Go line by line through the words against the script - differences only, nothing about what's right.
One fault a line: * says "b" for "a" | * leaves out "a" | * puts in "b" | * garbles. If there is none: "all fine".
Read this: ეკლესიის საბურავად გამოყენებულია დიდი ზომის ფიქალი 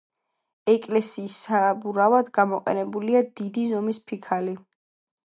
all fine